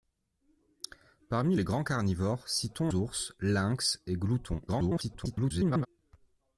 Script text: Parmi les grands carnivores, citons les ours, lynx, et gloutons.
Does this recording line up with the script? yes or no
no